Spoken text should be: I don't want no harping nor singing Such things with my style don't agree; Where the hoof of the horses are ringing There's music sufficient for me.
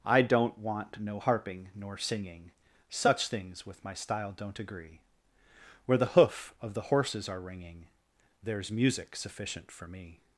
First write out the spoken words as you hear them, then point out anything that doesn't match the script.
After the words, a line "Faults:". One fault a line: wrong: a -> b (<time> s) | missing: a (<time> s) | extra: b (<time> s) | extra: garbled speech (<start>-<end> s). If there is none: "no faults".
I don't want no harping nor singing Such things with my style don't agree; Where the hoof of the horses are ringing There's music sufficient for me.
Faults:
no faults